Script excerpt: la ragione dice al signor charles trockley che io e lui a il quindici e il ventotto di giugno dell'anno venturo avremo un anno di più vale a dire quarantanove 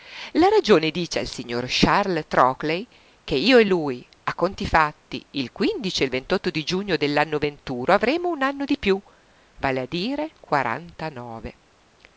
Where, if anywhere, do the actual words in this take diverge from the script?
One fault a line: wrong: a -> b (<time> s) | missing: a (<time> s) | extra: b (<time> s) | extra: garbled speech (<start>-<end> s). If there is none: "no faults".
extra: conti fatti (4.3 s)